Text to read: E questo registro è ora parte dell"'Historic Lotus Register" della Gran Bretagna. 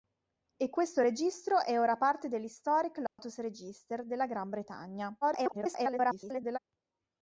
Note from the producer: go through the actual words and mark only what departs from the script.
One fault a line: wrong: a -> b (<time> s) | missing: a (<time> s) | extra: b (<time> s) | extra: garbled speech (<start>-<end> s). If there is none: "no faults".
extra: garbled speech (5.2-6.6 s)